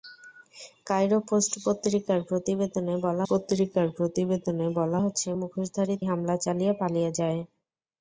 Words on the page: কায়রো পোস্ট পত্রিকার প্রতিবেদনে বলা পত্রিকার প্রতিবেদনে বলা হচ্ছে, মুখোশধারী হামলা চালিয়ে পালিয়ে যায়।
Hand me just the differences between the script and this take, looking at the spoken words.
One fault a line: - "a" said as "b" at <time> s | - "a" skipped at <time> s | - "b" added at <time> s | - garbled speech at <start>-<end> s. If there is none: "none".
none